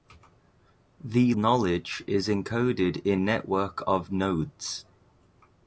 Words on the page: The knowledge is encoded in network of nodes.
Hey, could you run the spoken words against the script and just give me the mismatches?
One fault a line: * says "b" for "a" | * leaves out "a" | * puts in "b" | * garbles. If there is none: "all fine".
all fine